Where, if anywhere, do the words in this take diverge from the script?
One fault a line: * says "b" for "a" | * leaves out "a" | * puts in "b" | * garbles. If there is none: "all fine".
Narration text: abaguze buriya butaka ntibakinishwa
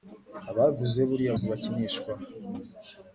* leaves out "butaka"